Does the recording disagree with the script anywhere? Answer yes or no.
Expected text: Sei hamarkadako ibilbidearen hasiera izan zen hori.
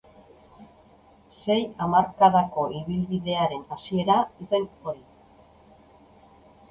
yes